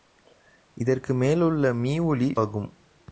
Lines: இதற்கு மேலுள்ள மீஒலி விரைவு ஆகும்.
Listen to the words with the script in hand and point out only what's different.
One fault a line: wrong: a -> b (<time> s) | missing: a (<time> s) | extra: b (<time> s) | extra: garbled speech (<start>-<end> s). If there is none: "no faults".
missing: விரைவு (2.4 s)